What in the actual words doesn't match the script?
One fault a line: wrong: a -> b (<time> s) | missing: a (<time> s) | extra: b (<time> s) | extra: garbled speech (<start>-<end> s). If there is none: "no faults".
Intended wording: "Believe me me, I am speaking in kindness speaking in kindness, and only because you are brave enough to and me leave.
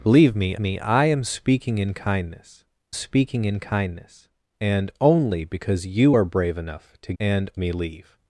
no faults